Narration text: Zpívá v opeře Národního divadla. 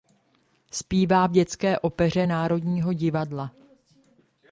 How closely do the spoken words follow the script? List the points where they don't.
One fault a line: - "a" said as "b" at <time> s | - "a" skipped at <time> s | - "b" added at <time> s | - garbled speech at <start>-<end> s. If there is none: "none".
- "dětské" added at 1.3 s